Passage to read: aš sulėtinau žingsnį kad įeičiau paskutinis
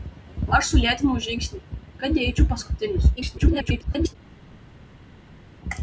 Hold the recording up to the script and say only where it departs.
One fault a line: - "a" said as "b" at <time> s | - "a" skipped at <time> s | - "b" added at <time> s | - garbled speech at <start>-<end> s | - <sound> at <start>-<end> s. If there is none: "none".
- garbled speech at 3.2-4.2 s